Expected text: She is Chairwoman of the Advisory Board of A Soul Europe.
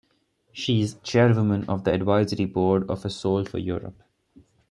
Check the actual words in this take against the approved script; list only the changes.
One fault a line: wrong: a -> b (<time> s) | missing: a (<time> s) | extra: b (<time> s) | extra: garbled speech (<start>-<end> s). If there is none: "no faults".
extra: for (3.5 s)